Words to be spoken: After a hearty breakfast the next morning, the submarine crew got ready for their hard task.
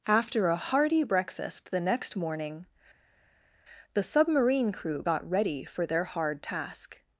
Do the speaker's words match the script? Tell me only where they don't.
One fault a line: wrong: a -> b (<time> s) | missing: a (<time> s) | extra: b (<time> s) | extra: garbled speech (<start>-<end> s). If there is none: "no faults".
no faults